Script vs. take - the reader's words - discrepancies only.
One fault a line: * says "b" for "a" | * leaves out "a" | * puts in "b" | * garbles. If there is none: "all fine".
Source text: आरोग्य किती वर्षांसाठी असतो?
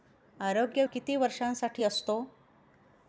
all fine